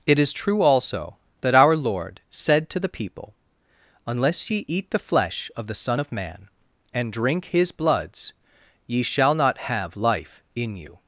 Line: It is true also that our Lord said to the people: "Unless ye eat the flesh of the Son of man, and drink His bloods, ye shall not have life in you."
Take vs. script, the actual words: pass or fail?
pass